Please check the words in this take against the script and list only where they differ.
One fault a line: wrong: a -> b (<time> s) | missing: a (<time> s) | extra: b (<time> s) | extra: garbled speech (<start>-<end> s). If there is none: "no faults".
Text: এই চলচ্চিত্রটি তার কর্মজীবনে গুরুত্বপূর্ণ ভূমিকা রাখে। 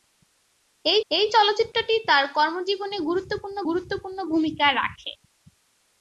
extra: এই (1.1 s)
extra: গুরুত্বপূর্ণ (3.7 s)